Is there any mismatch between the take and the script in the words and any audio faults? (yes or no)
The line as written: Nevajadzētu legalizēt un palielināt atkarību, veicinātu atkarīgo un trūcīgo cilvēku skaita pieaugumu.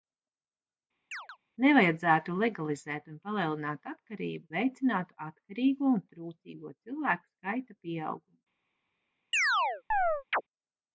yes